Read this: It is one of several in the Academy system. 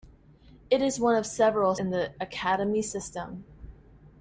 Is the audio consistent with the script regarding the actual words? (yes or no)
yes